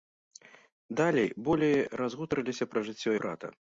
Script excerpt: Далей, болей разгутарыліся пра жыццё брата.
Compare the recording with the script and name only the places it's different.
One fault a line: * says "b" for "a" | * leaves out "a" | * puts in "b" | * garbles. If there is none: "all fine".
all fine